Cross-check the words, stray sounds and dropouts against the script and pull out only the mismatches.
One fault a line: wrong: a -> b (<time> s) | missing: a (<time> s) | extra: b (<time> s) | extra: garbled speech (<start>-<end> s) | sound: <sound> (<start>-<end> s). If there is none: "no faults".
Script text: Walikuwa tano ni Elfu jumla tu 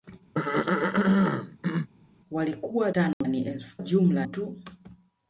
sound: throat clearing (0.3-1.9 s)
sound: dropout (3.1-3.2 s)